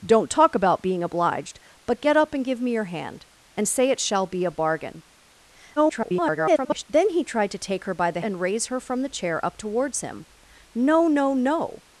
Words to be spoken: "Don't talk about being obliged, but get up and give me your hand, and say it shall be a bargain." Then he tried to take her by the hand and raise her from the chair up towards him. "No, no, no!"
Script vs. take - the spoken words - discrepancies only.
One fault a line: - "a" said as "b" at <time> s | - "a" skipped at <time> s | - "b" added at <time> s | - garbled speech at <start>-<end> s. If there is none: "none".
- garbled speech at 5.8-6.8 s
- "hand" skipped at 8.2 s